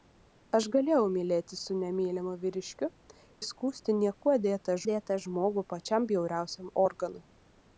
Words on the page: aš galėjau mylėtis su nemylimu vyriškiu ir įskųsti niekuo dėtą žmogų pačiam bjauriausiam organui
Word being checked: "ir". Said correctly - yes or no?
no